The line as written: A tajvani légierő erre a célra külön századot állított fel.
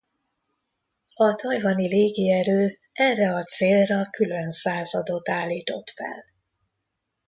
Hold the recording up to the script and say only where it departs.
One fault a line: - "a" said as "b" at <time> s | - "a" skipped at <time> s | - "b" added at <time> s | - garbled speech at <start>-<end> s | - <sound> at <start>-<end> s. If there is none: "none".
none